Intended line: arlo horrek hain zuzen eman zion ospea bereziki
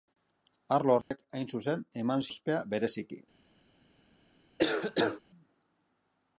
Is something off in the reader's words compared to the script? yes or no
yes